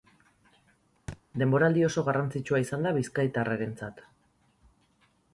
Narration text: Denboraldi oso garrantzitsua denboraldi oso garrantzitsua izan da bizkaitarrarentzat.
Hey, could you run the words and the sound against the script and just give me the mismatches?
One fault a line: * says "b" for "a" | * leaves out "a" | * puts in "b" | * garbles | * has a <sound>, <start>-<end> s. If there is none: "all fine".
* has a thud, 1.1-1.2 s
* leaves out "denboraldi oso garrantzitsua"